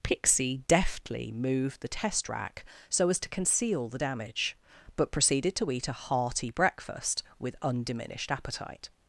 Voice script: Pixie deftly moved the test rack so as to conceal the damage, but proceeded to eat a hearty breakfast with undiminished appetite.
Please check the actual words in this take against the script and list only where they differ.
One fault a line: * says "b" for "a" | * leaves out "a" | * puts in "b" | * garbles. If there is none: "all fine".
all fine